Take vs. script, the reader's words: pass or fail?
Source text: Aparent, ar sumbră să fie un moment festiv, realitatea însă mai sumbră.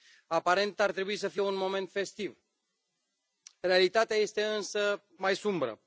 fail